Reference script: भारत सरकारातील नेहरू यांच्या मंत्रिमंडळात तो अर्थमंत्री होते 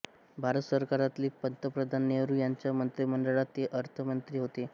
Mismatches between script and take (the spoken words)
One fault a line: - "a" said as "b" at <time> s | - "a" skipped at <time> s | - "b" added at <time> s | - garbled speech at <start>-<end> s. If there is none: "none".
- "पंतप्रधान" added at 1.4 s
- "तो" said as "ते" at 3.6 s